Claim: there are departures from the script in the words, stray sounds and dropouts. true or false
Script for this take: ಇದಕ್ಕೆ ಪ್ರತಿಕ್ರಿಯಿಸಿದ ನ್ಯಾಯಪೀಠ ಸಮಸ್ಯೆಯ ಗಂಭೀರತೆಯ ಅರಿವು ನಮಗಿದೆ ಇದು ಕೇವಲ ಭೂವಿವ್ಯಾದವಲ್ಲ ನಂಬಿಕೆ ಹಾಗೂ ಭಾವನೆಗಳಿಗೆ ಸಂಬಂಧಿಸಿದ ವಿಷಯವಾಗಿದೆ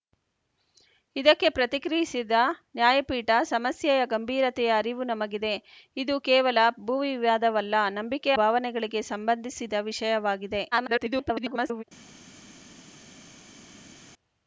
true